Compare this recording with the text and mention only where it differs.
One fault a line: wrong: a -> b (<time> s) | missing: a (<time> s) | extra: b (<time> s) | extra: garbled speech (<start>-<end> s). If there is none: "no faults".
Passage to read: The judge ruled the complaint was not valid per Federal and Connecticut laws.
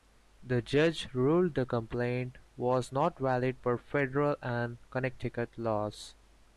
no faults